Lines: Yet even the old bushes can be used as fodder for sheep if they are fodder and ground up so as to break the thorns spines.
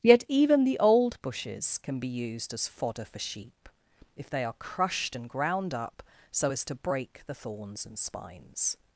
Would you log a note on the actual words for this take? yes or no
yes